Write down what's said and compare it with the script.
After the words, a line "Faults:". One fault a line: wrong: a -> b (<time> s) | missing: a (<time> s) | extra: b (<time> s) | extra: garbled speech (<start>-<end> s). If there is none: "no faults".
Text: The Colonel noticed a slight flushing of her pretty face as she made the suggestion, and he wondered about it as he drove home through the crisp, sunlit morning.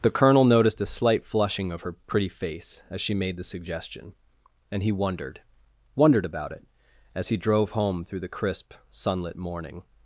The Colonel noticed a slight flushing of her pretty face as she made the suggestion, and he wondered wondered about it as he drove home through the crisp, sunlit morning.
Faults:
extra: wondered (5.9 s)